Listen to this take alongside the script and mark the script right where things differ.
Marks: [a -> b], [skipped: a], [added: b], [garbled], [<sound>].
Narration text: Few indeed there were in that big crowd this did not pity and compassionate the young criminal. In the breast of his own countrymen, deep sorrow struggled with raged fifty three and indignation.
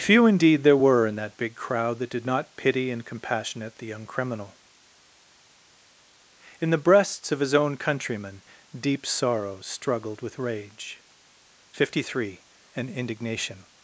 Few indeed there were in that big crowd [this -> that] did not pity and compassionate the young criminal. In the [breast -> breasts] of his own countrymen, deep sorrow struggled with [raged -> rage] fifty three and indignation.